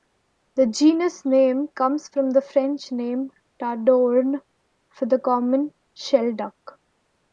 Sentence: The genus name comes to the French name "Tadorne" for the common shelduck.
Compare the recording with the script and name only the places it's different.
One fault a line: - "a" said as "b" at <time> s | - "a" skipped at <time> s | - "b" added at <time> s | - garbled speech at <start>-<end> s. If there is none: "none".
- "to" said as "from" at 2.1 s